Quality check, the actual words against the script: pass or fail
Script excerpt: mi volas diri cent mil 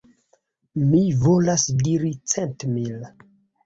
pass